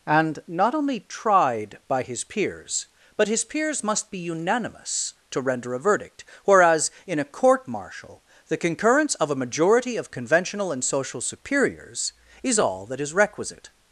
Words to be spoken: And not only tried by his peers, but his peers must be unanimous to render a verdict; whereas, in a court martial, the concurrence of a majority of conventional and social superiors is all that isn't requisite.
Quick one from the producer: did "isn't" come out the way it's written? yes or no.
no